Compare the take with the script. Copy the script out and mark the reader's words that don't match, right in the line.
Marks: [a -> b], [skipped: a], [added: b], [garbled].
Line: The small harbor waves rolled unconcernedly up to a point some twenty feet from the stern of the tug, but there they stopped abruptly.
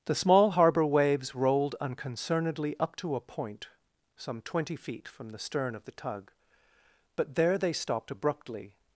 The small harbor waves rolled unconcernedly up to a point some twenty feet from the stern of the tug, but there they stopped abruptly.